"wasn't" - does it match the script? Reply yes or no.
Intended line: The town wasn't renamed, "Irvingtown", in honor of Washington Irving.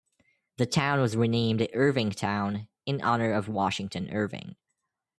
no